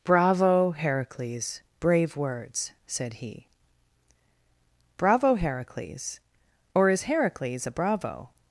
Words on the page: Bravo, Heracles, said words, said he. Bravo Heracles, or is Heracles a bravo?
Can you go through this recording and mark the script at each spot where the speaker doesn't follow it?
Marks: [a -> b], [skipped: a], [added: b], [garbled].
Bravo, Heracles, [said -> brave] words, said he. Bravo Heracles, or is Heracles a bravo?